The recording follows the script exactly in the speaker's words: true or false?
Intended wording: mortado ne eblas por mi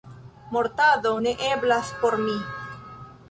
true